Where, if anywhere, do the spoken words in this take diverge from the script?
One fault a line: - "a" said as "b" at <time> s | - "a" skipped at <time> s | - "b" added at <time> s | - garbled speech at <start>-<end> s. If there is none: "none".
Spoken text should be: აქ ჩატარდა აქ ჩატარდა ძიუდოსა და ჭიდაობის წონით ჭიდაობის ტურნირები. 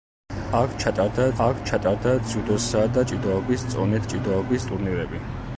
none